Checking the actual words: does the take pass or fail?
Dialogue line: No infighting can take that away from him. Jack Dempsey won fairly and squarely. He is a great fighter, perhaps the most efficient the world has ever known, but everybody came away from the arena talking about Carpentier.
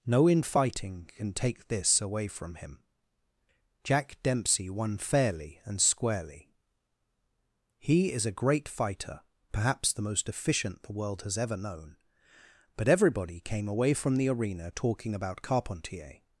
fail